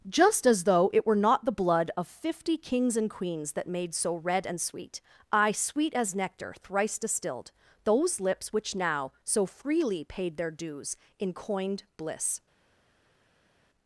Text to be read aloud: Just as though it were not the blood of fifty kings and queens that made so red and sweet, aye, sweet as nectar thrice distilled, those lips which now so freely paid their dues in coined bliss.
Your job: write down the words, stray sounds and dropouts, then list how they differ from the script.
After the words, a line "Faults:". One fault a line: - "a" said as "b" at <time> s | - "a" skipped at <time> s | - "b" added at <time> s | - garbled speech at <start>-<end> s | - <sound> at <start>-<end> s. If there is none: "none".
Just as though it were not the blood of fifty kings and queens that made so red and sweet, aye, sweet as nectar thrice distilled, those lips which now so freely paid their dues in coined bliss.
Faults:
none